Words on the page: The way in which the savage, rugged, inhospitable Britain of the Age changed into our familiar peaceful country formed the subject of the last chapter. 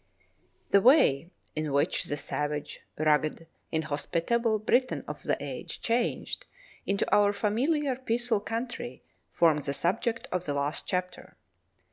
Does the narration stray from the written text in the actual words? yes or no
no